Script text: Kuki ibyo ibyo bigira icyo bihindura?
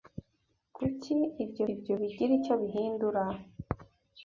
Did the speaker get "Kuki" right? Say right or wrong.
right